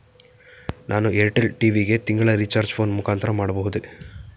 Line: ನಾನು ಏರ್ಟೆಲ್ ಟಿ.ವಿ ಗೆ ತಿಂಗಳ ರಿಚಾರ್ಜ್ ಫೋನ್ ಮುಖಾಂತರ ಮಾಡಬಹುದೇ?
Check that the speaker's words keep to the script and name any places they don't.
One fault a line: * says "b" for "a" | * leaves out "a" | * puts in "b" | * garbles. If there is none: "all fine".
all fine